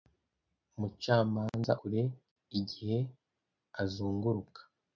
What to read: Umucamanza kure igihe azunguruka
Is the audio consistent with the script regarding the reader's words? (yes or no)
yes